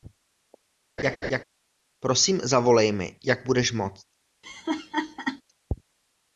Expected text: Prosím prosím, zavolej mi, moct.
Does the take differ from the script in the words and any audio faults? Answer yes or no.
yes